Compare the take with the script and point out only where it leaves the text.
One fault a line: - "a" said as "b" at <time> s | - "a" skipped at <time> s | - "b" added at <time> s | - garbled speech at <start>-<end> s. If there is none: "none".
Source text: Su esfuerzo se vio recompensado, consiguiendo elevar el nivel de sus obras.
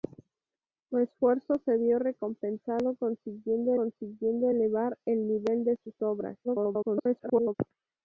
- "consiguiendo" added at 3.7 s
- garbled speech at 6.4-7.5 s